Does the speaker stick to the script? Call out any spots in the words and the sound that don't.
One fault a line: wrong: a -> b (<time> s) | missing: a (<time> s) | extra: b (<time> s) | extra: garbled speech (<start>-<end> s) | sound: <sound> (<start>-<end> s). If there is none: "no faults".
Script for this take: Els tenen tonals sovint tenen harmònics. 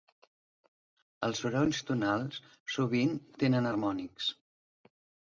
wrong: tenen -> sorolls (1.4 s)